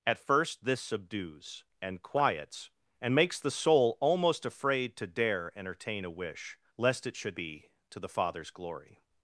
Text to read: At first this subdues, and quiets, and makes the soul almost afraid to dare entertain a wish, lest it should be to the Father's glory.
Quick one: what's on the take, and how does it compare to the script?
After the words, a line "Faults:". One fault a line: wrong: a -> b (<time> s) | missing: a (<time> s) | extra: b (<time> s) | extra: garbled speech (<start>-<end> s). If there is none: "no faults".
At first this subdues, and quiets, and makes the soul almost afraid to dare entertain a wish, lest it should be to the Father's glory.
Faults:
no faults